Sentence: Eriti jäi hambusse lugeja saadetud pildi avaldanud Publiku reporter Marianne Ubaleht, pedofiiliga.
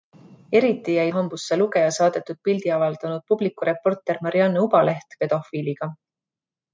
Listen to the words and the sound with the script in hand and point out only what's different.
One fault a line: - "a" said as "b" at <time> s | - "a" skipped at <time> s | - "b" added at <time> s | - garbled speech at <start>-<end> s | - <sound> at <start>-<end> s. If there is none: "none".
none